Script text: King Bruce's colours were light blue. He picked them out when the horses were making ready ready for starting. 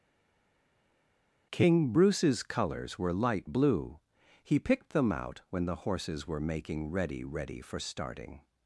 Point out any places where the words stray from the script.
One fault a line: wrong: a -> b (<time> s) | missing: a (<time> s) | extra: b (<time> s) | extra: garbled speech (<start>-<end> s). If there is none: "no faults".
no faults